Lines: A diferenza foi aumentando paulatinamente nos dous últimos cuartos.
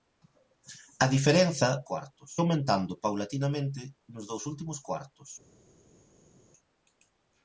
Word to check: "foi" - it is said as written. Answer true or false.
false